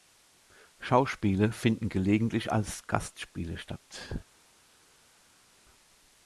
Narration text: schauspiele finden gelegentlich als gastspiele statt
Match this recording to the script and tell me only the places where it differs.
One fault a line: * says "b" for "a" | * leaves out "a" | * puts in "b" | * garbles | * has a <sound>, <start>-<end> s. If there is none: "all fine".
all fine